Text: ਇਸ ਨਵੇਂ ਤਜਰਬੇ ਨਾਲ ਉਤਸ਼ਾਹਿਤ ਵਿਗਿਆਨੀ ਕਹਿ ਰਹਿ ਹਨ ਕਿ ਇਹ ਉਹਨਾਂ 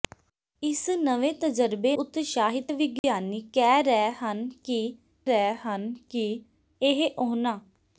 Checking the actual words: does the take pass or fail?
fail